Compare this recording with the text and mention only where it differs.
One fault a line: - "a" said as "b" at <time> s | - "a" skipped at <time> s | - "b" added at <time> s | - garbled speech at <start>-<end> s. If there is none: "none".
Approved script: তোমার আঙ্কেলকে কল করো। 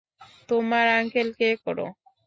- "কল" skipped at 1.5 s